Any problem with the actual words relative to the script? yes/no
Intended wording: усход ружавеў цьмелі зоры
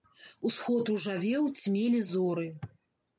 no